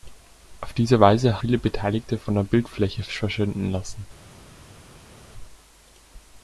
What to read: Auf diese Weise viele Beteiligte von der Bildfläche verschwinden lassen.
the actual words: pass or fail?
pass